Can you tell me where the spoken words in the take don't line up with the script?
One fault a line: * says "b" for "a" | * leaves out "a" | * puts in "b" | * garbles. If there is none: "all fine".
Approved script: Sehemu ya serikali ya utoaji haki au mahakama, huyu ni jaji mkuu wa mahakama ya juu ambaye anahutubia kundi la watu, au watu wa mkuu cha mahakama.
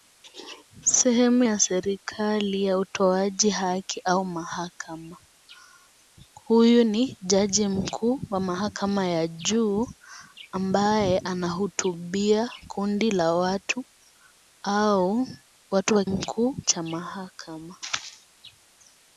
all fine